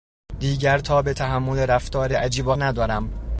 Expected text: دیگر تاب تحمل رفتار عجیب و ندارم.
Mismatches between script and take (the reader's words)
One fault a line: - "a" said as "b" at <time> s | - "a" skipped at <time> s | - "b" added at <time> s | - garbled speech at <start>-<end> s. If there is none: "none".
none